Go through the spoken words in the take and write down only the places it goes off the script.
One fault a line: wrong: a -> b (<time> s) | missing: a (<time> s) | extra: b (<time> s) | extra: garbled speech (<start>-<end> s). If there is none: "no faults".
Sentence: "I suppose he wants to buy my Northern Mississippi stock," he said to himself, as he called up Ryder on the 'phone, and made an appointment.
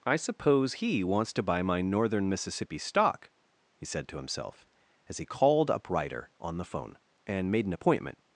no faults